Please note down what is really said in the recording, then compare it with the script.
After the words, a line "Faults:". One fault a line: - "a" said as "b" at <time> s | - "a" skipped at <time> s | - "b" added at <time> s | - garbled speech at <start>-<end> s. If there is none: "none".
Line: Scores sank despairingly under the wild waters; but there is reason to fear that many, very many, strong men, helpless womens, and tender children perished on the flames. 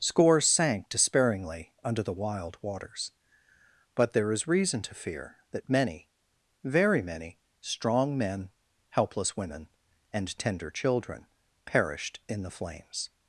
Scores sank despairingly under the wild waters; but there is reason to fear that many, very many, strong men, helpless women, and tender children perished in the flames.
Faults:
- "womens" said as "women" at 9.4 s
- "on" said as "in" at 12.3 s